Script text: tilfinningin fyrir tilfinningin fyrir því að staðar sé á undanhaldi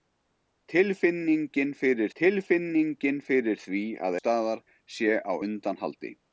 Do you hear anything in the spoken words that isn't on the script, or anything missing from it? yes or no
no